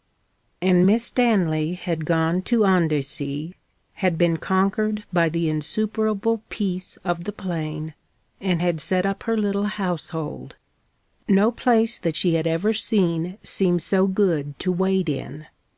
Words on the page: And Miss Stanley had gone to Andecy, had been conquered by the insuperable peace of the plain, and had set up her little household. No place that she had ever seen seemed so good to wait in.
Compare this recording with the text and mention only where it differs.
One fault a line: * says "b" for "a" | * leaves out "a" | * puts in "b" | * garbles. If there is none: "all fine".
all fine